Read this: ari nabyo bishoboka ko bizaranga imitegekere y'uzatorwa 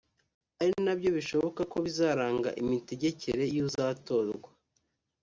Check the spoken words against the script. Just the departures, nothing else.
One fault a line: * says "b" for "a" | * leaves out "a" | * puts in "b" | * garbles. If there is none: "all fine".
all fine